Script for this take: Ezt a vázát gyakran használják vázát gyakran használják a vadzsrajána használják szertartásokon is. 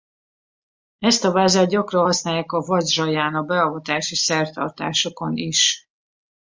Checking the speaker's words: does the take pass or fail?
fail